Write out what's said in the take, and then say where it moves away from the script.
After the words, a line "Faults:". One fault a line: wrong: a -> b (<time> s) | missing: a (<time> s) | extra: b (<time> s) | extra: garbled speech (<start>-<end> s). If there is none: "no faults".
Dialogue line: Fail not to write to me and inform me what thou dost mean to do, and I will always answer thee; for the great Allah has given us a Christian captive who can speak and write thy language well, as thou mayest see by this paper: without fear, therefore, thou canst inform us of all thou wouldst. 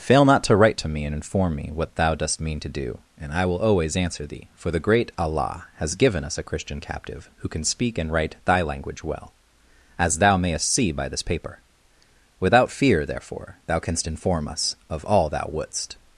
Fail not to write to me and inform me what thou dost mean to do, and I will always answer thee; for the great Allah has given us a Christian captive who can speak and write thy language well, as thou mayest see by this paper: without fear, therefore, thou canst inform us of all thou wouldst.
Faults:
no faults